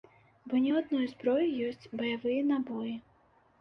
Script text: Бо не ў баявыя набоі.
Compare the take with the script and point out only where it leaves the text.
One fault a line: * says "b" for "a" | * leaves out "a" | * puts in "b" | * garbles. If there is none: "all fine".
* puts in "адной зброі ёсць"